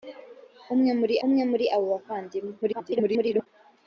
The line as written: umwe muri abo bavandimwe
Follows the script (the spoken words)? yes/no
no